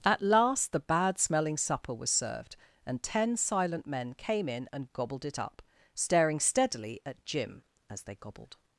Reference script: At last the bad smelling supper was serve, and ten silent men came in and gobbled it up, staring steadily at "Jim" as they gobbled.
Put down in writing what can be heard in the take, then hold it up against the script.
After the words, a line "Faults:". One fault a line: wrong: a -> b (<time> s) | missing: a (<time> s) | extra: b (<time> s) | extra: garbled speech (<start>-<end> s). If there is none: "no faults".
At last the bad smelling supper was served, and ten silent men came in and gobbled it up, staring steadily at "Jim" as they gobbled.
Faults:
wrong: serve -> served (2.1 s)